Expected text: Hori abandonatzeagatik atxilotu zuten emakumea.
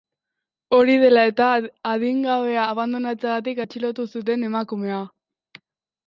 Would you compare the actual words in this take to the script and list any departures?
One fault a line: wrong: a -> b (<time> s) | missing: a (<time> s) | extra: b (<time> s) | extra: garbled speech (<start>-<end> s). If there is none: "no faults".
extra: dela eta adingabea (1.0 s)